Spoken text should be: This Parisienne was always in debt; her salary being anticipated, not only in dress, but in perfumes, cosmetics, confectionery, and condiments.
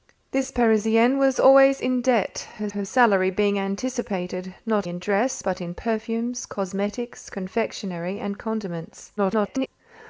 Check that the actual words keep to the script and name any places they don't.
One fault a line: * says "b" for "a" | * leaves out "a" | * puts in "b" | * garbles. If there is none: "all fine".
* puts in "her"
* leaves out "only"
* garbles